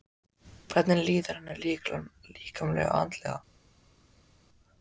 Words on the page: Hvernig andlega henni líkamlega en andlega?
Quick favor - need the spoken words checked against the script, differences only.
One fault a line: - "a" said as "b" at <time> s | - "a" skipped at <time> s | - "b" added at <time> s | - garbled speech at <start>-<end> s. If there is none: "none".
- "andlega" said as "líður" at 1.1 s
- "en" said as "og" at 2.9 s